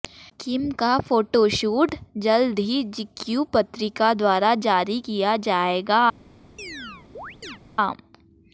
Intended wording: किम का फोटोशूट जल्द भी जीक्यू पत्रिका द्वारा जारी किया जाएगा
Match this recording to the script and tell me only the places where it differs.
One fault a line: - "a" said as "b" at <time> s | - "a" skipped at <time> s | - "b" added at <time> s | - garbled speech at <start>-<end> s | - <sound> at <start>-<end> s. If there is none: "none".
- "भी" said as "ही" at 2.6 s
- chirp at 6.6-7.6 s